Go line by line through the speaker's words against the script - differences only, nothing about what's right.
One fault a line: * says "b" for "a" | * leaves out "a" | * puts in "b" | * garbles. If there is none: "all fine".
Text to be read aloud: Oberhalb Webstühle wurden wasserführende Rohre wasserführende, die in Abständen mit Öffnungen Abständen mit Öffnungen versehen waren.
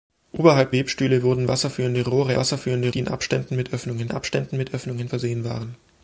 all fine